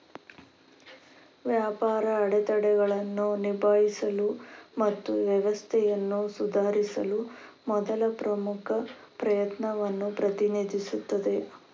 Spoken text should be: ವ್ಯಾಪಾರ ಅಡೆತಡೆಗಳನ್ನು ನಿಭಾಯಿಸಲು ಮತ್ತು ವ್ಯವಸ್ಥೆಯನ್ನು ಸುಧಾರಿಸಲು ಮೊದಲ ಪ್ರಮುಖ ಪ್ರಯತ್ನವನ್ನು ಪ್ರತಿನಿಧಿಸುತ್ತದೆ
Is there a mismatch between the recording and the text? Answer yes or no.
no